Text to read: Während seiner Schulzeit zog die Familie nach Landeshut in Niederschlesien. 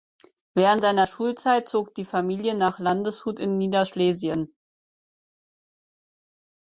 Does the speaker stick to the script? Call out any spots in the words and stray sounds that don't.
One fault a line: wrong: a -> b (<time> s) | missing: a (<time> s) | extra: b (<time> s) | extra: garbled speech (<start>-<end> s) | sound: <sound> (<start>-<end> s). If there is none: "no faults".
no faults